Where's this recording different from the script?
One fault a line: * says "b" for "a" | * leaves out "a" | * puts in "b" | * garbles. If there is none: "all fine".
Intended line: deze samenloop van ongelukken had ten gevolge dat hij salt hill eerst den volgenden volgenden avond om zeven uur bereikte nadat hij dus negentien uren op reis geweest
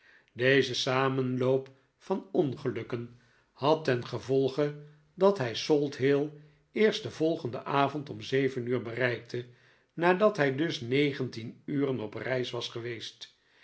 * leaves out "volgenden"
* puts in "was"